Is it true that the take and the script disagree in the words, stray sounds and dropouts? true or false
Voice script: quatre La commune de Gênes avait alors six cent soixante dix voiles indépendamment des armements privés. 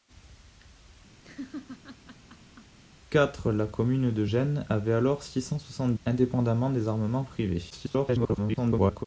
true